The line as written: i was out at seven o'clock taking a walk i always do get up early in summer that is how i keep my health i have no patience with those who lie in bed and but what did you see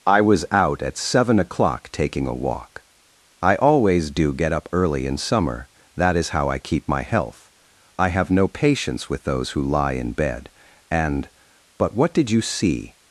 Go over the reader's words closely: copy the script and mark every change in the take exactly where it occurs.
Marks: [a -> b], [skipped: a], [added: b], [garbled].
i was out at seven o'clock taking a walk i always do get up early in summer that is how i keep my health i have no patience with those who lie in bed and but what did you see